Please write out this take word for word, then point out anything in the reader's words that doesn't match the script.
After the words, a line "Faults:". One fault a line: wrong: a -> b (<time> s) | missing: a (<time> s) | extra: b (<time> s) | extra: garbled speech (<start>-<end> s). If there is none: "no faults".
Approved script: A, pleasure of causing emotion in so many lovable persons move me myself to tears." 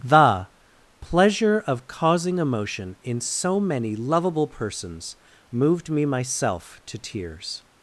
The, pleasure of causing emotion in so many lovable persons moved me myself to tears."
Faults:
wrong: A -> The (0.0 s)
wrong: move -> moved (5.5 s)